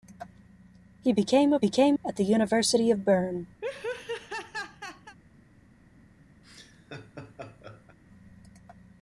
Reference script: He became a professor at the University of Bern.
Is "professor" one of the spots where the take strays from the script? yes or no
yes